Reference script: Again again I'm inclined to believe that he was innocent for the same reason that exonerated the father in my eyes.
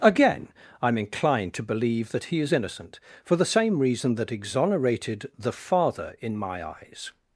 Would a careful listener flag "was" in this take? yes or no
yes